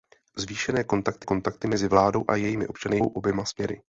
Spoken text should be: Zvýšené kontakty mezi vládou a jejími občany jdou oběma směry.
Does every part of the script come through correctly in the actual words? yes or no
no